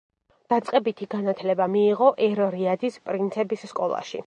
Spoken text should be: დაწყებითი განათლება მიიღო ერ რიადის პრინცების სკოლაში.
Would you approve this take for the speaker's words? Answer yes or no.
yes